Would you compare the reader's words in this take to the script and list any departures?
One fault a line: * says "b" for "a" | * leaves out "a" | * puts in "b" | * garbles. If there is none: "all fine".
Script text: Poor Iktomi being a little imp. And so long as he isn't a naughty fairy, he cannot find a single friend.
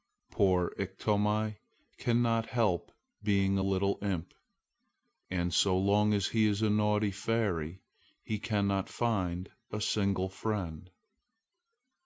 * puts in "cannot help"
* says "is" for "isn't"